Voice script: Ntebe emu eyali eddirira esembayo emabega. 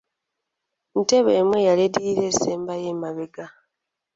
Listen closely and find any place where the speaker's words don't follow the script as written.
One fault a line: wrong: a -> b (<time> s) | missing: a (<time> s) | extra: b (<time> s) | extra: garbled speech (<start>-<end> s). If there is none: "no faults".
no faults